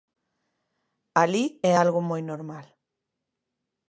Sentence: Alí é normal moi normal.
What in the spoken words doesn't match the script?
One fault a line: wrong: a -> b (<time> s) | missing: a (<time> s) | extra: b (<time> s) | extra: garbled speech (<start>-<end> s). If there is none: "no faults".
wrong: normal -> algo (1.8 s)